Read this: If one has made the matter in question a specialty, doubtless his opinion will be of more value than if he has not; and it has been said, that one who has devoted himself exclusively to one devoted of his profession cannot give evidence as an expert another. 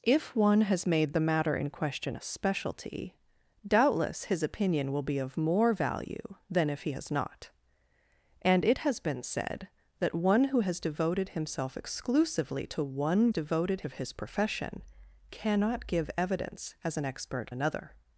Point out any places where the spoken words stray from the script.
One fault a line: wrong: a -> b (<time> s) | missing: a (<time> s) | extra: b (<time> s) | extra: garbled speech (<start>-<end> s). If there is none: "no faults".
no faults